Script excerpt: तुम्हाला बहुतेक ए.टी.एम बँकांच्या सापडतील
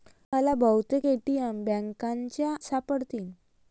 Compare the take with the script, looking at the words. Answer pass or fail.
pass